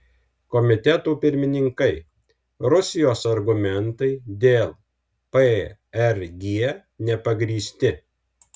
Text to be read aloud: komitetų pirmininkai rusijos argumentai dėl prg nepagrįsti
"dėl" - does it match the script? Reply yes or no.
yes